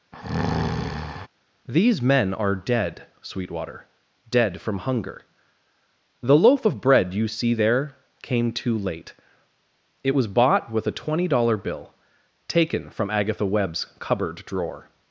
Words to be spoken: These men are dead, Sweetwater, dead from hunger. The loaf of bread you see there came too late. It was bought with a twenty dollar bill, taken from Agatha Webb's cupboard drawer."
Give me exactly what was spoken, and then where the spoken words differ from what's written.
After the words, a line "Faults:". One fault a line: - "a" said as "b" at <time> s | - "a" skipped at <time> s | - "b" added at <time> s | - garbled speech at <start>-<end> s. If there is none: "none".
These men are dead, Sweetwater, dead from hunger. The loaf of bread you see there came too late. It was bought with a twenty dollar bill, taken from Agatha Webb's cupboard drawer."
Faults:
none